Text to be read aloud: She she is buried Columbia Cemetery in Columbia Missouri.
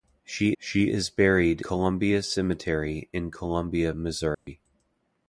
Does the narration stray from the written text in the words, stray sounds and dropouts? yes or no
yes